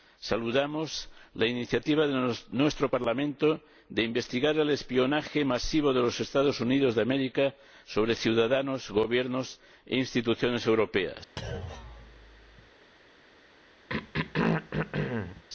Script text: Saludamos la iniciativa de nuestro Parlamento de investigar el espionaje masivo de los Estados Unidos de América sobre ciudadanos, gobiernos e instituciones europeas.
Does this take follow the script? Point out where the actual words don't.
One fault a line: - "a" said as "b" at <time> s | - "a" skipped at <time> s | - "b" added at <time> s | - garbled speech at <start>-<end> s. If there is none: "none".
none